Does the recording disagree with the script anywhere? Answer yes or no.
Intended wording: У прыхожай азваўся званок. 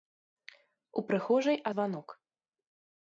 yes